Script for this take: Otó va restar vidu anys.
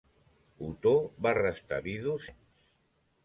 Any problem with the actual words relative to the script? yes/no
no